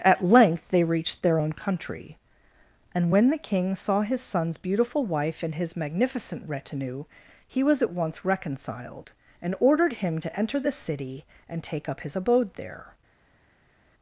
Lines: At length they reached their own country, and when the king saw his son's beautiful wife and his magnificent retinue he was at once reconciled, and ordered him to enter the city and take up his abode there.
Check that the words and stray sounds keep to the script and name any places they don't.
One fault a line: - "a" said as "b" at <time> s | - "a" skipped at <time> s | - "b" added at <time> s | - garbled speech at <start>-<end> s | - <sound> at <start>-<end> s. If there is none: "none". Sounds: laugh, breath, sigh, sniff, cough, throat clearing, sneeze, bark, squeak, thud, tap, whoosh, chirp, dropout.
none